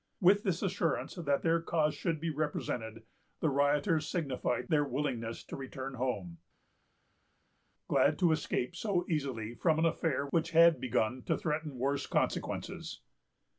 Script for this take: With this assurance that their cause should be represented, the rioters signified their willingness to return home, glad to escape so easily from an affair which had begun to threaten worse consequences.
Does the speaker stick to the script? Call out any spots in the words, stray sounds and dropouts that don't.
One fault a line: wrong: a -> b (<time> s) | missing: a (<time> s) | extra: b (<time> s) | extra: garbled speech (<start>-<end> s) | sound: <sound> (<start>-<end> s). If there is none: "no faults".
no faults